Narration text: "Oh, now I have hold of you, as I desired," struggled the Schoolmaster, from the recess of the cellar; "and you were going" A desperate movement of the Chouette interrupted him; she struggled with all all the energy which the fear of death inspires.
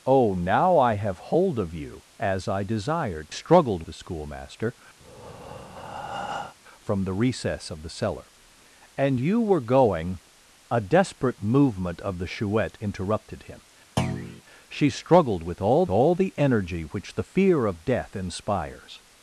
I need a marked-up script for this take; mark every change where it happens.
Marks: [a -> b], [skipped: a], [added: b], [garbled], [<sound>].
"Oh, now I have hold of you, as I desired," struggled the Schoolmaster, [breath] from the recess of the cellar; "and you were going" A desperate movement of the Chouette interrupted him; [thud] she struggled with all all the energy which the fear of death inspires.